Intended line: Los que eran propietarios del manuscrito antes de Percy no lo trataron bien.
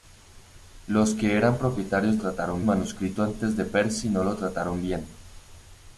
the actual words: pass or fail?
fail